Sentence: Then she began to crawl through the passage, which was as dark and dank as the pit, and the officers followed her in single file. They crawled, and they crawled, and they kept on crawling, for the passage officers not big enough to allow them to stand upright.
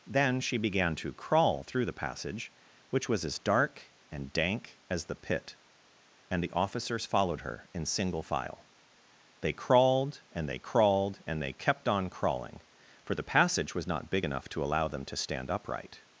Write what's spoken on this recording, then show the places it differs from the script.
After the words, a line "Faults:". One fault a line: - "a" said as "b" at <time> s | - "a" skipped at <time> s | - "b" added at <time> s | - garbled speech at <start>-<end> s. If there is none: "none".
Then she began to crawl through the passage, which was as dark and dank as the pit, and the officers followed her in single file. They crawled, and they crawled, and they kept on crawling, for the passage was not big enough to allow them to stand upright.
Faults:
- "officers" said as "was" at 13.7 s